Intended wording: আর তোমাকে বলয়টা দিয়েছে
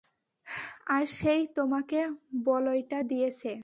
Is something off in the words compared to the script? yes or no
yes